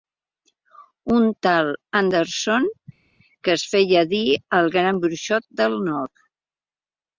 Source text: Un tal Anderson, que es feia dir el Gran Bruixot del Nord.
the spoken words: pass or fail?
pass